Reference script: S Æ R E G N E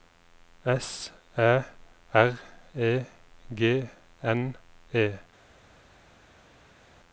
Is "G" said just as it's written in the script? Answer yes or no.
yes